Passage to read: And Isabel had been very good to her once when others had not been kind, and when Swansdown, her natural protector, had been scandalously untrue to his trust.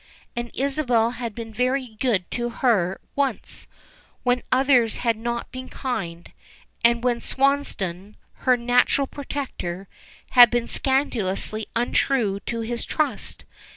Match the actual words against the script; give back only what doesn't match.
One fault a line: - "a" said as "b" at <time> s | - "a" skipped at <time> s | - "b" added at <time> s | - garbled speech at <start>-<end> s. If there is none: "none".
none